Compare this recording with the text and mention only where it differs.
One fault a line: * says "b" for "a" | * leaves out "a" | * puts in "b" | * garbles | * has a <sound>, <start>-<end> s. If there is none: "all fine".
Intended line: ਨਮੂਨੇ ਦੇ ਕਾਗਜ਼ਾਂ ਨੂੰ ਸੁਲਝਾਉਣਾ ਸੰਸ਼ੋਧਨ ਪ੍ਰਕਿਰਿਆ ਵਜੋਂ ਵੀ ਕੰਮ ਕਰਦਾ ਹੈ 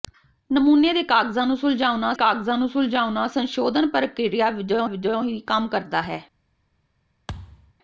* puts in "ਕਾਗਜ਼ਾਂ ਨੂੰ ਸੁਲਝਾਉਣਾ"
* puts in "ਵਜੋਂ"
* has a thud, 7.3-7.7 s